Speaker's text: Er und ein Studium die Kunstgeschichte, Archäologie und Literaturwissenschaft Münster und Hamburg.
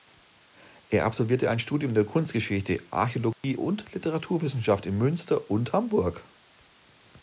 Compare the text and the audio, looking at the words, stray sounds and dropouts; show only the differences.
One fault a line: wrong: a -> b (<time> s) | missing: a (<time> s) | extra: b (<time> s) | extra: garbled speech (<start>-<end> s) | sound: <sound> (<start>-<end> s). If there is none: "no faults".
wrong: und -> absolvierte (1.1 s)
wrong: die -> der (1.9 s)
sound: dropout (3.3-3.4 s)
extra: in (4.8 s)